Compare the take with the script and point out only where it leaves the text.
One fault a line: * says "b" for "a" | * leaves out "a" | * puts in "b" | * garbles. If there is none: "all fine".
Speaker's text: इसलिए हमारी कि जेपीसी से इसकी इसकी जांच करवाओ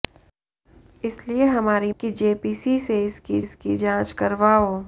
all fine